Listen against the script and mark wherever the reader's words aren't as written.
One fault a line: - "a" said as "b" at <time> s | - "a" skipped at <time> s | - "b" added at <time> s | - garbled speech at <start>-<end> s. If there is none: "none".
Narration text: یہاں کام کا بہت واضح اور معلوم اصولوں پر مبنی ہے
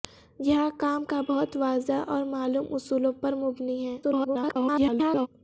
- garbled speech at 4.0-5.3 s